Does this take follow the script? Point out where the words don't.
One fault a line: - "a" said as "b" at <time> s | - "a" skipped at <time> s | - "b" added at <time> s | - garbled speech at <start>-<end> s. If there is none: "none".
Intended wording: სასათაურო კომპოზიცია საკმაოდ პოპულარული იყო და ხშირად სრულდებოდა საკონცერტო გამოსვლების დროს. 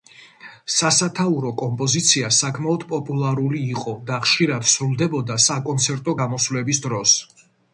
none